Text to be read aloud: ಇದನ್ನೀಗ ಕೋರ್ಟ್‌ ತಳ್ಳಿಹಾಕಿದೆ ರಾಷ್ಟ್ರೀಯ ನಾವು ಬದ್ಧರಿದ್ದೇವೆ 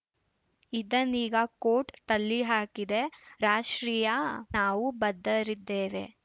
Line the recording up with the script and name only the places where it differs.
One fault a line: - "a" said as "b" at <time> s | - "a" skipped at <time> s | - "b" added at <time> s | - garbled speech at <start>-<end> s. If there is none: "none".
none